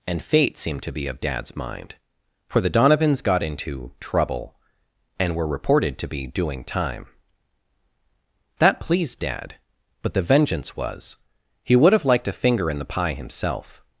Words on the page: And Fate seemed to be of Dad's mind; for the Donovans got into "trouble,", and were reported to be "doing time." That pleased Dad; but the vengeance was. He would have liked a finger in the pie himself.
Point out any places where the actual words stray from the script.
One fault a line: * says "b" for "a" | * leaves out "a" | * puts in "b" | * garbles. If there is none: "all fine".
all fine